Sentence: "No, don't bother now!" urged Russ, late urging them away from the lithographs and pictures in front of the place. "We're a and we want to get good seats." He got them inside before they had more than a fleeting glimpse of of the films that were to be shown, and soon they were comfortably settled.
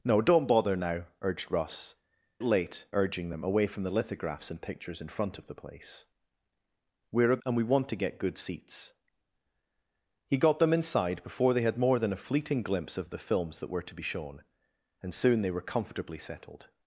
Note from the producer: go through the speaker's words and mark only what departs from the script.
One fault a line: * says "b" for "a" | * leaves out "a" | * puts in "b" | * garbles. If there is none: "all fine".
all fine